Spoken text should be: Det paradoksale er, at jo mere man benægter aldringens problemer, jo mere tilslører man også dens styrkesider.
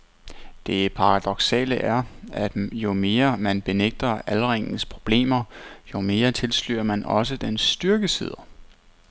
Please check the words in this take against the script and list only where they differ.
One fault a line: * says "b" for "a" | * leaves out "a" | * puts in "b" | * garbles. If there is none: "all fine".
all fine